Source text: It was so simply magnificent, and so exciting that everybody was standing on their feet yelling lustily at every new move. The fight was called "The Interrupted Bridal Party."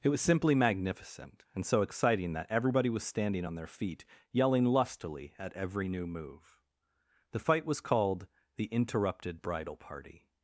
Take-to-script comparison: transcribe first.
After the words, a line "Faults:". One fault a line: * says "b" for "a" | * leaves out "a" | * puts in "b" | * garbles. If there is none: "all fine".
It was simply magnificent, and so exciting that everybody was standing on their feet yelling lustily at every new move. The fight was called "The Interrupted Bridal Party."
Faults:
* leaves out "so"